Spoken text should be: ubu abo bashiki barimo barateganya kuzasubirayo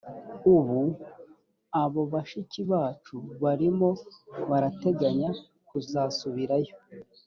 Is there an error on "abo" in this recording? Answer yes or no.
no